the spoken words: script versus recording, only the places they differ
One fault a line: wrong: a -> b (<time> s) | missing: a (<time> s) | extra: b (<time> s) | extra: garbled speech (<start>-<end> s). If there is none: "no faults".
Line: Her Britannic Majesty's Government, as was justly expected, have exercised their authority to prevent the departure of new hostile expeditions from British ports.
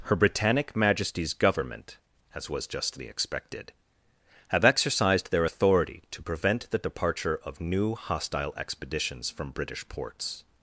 no faults